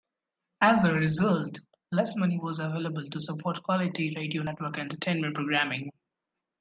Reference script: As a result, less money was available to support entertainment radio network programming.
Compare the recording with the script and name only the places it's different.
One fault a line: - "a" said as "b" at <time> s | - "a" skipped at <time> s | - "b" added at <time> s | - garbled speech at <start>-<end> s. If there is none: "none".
- "entertainment" said as "quality" at 3.6 s
- "entertainment" added at 4.8 s